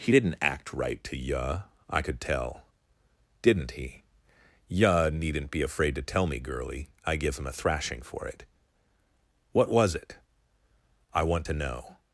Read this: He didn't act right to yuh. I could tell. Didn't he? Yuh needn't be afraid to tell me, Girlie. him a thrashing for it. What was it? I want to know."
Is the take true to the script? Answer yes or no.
no